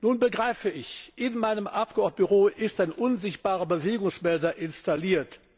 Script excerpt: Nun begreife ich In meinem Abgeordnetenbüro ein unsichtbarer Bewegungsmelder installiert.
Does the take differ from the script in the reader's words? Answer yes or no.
yes